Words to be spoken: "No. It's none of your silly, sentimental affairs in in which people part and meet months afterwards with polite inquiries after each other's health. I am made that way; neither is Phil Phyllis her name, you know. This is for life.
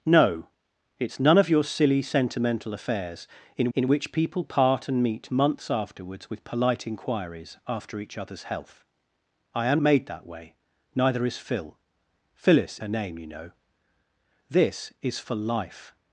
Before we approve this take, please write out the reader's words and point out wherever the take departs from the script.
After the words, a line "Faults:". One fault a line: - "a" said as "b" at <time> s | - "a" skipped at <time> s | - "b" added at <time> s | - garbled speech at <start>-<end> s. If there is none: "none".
"No. It's none of your silly, sentimental affairs in in which people part and meet months afterwards with polite inquiries after each other's health. I am made that way; neither is Phil Phyllis her name, you know. This is for life.
Faults:
none